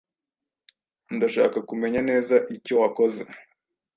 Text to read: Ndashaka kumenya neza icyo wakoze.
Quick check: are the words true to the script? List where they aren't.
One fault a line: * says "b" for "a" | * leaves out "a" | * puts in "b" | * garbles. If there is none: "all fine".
all fine